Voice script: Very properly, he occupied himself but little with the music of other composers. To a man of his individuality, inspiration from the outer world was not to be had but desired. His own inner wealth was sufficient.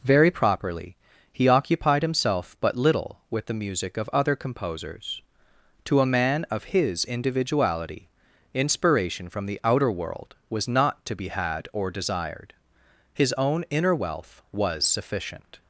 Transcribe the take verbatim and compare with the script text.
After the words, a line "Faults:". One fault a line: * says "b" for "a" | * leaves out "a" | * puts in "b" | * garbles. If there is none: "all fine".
Very properly, he occupied himself but little with the music of other composers. To a man of his individuality, inspiration from the outer world was not to be had or desired. His own inner wealth was sufficient.
Faults:
* says "or" for "but"